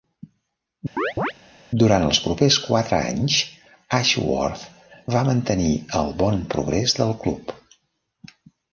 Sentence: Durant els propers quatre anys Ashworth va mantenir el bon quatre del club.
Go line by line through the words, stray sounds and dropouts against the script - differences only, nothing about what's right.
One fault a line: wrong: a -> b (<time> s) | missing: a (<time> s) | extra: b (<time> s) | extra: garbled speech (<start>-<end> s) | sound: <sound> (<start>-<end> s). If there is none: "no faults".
sound: chirp (1.0-1.3 s)
wrong: quatre -> progrés (6.6 s)